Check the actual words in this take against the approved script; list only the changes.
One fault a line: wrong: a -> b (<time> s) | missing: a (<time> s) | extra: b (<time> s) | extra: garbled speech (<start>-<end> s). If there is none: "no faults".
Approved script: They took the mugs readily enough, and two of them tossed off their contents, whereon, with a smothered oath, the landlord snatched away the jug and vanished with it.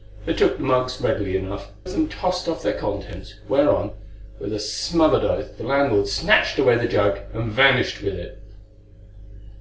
missing: and two (1.7 s)